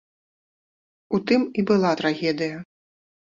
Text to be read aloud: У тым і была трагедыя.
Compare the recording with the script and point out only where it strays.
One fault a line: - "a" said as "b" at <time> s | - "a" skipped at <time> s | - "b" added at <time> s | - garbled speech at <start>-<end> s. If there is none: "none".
none